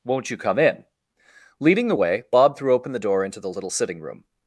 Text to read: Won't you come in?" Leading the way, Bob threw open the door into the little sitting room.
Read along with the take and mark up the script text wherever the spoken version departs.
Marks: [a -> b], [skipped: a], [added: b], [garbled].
Won't you come in?" Leading the way, Bob threw open the door into the little sitting room.